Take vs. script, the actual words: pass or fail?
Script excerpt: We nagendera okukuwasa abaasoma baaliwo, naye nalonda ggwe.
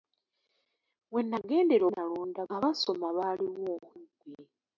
fail